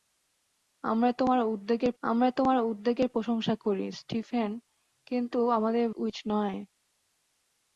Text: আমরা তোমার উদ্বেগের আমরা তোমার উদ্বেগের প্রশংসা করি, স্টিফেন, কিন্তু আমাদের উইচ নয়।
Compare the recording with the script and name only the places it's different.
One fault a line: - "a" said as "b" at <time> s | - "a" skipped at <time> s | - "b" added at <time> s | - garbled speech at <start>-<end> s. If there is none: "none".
none